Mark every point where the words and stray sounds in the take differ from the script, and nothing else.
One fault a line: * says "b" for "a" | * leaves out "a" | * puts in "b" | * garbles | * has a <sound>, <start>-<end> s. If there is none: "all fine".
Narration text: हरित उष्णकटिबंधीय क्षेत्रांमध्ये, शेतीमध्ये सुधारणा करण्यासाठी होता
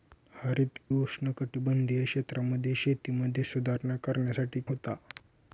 all fine